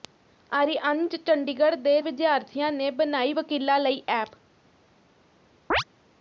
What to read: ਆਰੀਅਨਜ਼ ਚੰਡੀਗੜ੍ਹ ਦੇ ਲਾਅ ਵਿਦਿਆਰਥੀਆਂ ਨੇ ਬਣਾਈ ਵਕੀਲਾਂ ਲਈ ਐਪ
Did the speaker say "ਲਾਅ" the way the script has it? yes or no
no